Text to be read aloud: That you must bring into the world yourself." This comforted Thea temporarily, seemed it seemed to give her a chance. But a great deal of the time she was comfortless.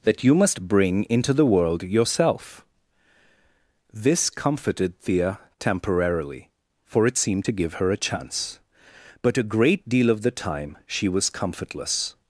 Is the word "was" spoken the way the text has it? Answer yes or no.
yes